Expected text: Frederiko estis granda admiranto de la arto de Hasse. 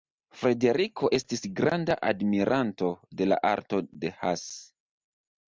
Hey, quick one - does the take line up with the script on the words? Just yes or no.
yes